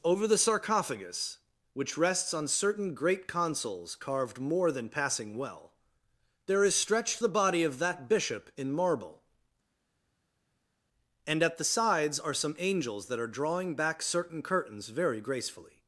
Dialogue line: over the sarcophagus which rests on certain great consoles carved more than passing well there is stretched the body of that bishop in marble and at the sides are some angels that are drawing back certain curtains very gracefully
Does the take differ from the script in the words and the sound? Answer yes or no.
no